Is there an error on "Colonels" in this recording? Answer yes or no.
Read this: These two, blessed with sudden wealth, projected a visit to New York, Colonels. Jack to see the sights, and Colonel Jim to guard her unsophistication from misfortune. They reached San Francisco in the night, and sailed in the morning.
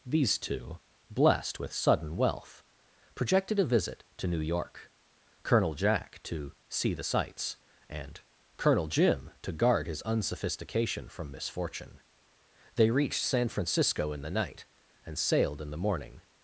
yes